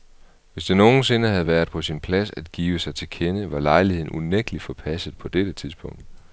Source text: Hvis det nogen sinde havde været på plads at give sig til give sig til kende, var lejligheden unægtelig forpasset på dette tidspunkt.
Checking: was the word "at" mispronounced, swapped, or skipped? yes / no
no